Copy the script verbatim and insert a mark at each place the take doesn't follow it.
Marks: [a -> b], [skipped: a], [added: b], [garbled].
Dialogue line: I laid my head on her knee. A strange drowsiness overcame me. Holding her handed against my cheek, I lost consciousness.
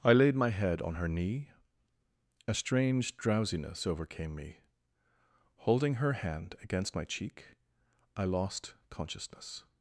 I laid my head on her knee. A strange drowsiness overcame me. Holding her [handed -> hand] against my cheek, I lost consciousness.